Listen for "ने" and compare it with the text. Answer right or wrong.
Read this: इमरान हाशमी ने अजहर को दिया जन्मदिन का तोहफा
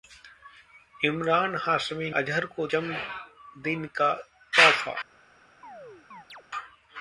wrong